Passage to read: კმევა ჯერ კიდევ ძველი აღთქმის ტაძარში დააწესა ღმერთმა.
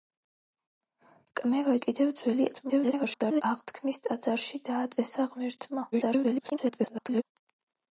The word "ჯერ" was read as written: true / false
false